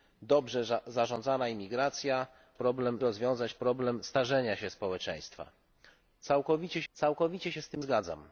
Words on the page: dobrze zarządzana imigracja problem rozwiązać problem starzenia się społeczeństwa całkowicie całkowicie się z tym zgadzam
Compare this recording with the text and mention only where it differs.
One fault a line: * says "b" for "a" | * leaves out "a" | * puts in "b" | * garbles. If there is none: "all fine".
all fine